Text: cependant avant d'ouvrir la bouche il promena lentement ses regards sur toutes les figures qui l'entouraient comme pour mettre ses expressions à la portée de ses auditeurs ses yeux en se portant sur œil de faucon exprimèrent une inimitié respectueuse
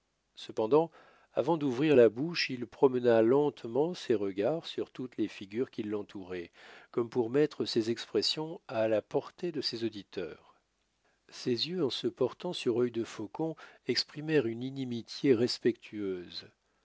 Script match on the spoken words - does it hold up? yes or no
yes